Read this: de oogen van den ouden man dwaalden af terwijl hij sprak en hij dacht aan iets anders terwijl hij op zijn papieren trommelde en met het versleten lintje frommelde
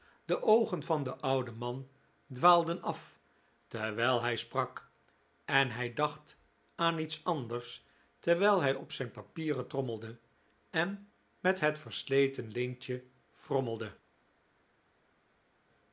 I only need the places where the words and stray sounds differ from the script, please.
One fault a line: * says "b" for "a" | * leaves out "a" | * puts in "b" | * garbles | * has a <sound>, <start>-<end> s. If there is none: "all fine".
all fine